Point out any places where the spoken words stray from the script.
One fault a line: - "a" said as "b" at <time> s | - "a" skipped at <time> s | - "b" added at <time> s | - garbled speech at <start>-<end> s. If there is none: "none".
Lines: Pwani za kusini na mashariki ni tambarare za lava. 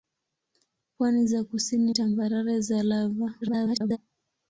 - "na mashariki ni" skipped at 1.9 s
- garbled speech at 3.4-4.0 s